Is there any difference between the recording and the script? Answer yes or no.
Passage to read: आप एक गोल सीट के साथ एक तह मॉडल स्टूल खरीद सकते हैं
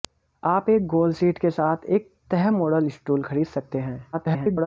yes